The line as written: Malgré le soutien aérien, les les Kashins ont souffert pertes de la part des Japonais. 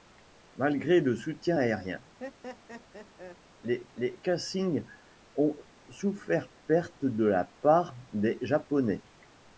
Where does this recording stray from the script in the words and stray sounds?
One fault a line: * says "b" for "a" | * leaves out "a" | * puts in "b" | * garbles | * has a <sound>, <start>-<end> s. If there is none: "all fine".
* has a laugh, 2.2-3.4 s